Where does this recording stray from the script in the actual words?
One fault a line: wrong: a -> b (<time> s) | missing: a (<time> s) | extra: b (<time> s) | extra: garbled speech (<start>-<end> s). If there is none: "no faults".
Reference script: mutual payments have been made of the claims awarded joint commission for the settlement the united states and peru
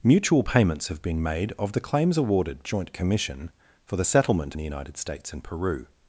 no faults